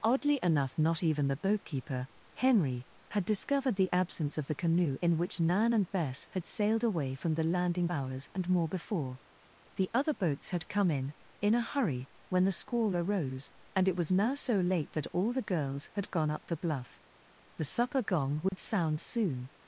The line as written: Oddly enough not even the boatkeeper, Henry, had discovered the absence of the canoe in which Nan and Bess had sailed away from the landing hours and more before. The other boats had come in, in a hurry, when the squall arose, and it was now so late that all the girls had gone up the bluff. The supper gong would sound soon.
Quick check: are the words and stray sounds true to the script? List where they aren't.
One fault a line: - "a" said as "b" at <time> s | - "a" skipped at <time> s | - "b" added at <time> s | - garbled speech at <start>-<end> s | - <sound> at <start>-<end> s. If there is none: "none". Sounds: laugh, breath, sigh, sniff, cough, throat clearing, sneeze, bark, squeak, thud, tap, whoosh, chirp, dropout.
- dropout at 18.5-18.5 s